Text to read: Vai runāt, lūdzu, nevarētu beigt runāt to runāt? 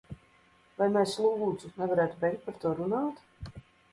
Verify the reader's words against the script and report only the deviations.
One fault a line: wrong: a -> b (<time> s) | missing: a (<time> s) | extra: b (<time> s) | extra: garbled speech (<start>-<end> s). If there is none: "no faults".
wrong: runāt -> mēs (0.9 s)
wrong: runāt -> par (2.5 s)